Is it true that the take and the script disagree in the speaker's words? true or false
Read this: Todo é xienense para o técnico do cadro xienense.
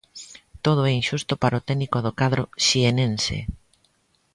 true